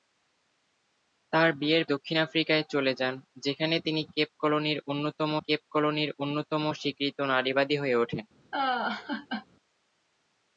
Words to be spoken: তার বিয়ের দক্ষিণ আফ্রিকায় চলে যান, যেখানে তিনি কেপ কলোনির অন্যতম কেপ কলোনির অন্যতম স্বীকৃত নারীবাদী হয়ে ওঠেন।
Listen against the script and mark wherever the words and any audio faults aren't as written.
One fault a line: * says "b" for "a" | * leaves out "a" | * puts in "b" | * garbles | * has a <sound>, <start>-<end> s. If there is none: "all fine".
* has a laugh, 8.5-9.5 s